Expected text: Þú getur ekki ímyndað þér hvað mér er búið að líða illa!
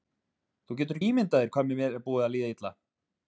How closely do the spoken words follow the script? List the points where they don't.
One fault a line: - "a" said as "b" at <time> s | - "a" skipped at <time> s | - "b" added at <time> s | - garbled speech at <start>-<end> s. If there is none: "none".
- "ekki" skipped at 1.0 s